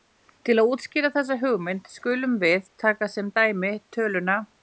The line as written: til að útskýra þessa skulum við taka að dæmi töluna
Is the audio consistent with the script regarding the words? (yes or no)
no